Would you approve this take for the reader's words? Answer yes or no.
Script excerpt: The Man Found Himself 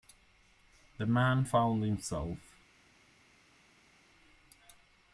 yes